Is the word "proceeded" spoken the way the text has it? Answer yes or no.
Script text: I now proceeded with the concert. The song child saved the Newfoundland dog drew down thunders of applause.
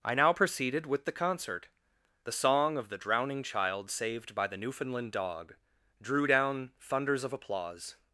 yes